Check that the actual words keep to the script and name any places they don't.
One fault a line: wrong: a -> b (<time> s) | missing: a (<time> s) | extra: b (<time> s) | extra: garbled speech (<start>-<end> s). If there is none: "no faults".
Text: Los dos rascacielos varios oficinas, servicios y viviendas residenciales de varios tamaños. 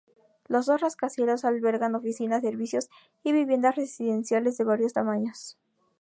wrong: varios -> albergan (1.4 s)